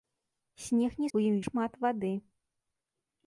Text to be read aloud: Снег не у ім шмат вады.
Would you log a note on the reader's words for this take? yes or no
no